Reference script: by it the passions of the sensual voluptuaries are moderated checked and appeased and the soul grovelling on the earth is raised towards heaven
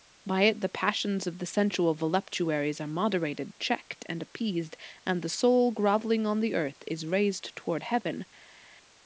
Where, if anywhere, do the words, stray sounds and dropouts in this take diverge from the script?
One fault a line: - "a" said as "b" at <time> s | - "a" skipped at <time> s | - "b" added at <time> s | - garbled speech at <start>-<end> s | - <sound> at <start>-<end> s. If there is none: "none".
none